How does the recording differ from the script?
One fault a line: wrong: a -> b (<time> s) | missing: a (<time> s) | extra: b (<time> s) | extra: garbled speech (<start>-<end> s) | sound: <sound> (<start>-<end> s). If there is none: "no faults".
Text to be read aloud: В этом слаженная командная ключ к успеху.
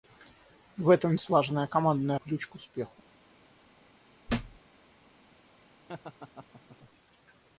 sound: thud (4.3-4.6 s)
sound: laugh (5.9-6.8 s)